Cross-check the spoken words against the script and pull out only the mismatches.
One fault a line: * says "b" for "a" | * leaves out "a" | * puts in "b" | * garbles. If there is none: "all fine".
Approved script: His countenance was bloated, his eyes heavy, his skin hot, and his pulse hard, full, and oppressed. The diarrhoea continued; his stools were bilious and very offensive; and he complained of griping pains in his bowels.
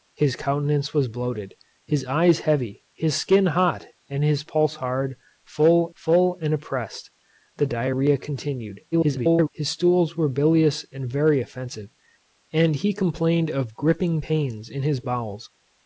* puts in "full"
* garbles